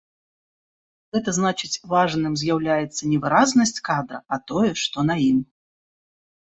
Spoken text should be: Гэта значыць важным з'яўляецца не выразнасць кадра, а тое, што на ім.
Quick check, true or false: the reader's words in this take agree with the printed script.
true